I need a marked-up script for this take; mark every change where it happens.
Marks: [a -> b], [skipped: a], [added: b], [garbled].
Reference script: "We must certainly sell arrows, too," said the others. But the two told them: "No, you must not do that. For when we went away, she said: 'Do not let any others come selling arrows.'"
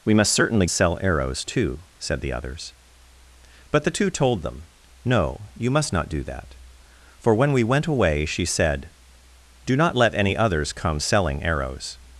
"We must certainly sell arrows, too," said the others. But the two told them: "No, you must not do that. For when we went away, she said: 'Do not let any others come selling arrows.'"